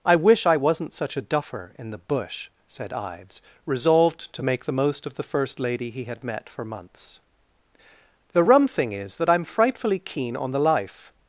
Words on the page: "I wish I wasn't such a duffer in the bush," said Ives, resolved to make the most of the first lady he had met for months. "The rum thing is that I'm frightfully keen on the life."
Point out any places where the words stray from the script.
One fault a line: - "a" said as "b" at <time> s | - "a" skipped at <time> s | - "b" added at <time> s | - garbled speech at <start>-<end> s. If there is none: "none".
none